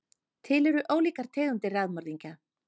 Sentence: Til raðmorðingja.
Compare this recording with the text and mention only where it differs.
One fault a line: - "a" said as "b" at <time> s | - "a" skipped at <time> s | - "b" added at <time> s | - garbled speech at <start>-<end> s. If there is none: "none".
- "eru ólíkar tegundir" added at 0.7 s